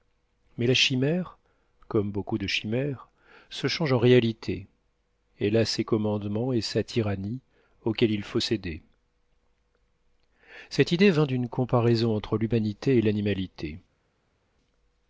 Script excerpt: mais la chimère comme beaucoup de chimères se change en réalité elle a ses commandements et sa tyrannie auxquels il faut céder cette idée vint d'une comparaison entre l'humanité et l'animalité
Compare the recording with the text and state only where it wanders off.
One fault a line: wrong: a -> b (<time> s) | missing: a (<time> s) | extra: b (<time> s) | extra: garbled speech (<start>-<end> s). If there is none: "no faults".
no faults